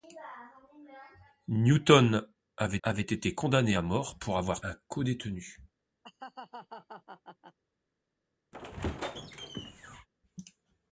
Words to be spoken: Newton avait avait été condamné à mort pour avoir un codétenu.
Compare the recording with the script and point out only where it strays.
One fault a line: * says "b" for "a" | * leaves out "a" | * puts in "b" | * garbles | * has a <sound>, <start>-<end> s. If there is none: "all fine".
* has a laugh, 6.0-7.6 s
* has a squeak, 8.5-10.1 s